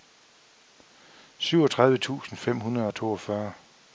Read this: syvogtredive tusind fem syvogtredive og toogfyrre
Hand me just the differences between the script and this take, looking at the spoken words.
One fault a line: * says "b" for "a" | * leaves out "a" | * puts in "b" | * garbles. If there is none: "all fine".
* says "hundrede" for "syvogtredive"